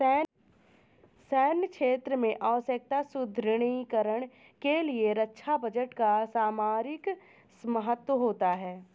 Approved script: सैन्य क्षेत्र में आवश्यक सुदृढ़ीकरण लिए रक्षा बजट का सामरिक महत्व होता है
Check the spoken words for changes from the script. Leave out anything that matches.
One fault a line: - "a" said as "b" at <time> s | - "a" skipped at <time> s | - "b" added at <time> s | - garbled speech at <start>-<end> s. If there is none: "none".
- "के" added at 4.6 s